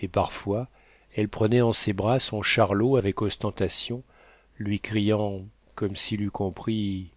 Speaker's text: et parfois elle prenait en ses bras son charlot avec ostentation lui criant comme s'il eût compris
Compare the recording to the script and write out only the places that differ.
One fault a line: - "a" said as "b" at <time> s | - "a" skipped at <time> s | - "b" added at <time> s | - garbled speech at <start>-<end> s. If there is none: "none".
none